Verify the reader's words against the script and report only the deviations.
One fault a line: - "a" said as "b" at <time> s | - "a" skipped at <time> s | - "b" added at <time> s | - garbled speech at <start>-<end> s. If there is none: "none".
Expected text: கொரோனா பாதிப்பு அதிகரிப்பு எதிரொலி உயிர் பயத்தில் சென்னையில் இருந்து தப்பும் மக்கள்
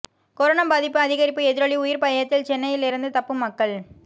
none